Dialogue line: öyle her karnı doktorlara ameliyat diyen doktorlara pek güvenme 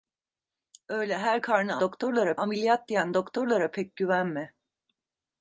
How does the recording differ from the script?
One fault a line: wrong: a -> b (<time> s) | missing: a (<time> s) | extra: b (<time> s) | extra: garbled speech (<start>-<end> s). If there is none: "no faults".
no faults